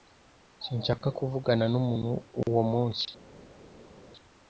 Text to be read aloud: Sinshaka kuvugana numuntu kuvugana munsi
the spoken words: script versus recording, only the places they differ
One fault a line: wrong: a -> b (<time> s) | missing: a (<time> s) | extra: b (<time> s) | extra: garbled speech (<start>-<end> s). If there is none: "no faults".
wrong: kuvugana -> uwo (2.4 s)